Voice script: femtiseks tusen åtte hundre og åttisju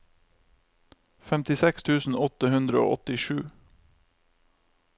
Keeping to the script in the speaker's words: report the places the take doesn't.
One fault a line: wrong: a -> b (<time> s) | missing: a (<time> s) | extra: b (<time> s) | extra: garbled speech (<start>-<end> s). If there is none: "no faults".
no faults